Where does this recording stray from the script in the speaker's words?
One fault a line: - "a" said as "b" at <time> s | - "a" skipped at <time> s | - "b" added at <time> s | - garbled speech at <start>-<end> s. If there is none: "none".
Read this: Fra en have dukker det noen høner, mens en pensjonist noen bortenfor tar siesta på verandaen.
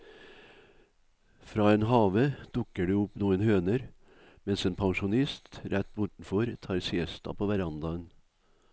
- "opp" added at 3.0 s
- "noen" said as "rett" at 5.7 s